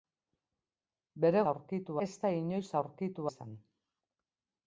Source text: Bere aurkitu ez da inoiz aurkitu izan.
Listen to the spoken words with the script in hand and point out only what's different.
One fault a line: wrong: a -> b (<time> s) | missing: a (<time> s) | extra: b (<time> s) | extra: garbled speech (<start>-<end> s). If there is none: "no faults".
no faults